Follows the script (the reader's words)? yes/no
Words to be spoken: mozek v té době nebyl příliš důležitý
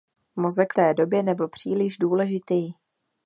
no